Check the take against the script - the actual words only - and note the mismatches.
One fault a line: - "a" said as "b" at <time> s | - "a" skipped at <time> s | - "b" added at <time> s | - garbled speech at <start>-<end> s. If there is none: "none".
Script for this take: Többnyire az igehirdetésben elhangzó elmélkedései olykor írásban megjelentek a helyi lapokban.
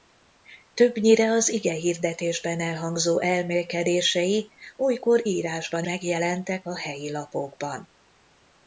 none